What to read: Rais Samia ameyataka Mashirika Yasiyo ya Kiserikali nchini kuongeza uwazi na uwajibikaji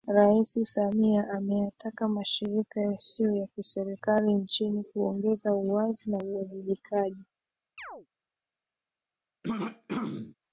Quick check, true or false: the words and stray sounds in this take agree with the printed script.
false